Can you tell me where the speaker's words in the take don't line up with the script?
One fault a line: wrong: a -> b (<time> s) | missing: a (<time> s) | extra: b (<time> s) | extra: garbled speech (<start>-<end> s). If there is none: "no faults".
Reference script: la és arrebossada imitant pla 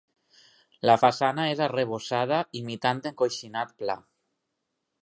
extra: façana (1.0 s)
extra: encoixinat (3.1 s)